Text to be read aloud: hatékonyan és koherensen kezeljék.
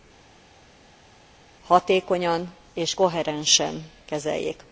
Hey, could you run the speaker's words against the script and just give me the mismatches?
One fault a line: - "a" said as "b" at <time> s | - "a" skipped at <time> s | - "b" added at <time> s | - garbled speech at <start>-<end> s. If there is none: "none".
none